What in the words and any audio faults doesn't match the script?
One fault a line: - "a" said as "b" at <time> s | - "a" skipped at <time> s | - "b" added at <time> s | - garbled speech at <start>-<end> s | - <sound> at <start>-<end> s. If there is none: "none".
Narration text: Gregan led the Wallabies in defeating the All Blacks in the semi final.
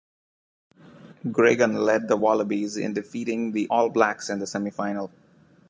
none